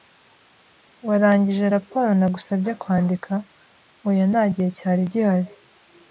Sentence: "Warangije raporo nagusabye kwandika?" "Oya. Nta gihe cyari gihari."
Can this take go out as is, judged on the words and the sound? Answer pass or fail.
pass